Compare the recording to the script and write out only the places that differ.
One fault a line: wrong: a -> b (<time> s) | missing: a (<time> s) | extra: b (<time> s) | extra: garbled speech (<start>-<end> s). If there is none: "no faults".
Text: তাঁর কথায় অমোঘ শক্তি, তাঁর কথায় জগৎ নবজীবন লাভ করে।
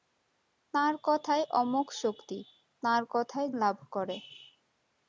missing: জগৎ নবজীবন (3.5 s)